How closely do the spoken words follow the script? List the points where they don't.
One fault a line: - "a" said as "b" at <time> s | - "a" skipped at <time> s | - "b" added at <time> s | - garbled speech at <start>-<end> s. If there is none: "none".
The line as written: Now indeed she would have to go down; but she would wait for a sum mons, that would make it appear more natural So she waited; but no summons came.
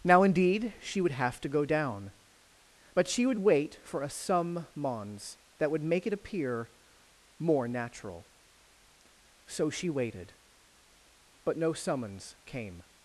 none